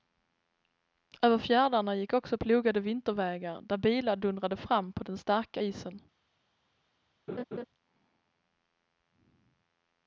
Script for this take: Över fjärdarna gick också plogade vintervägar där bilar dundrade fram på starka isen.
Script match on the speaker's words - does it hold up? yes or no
no